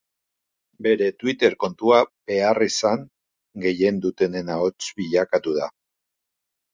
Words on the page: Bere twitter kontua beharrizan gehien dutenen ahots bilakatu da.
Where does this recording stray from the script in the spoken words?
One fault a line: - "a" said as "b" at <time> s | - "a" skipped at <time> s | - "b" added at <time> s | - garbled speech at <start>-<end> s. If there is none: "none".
none